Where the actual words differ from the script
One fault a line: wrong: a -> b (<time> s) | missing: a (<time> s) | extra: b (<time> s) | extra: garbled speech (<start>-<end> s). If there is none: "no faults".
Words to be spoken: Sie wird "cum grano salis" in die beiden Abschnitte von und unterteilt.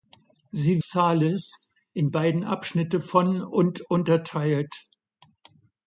missing: wird cum grano (0.8 s)
missing: die (2.1 s)